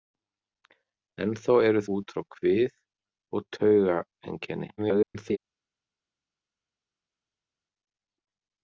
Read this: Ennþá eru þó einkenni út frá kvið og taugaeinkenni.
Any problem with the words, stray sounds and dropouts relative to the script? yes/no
yes